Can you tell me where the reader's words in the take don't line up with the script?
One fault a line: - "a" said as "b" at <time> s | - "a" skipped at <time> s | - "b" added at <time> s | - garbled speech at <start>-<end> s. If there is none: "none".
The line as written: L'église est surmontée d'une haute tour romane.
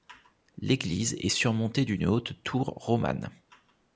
none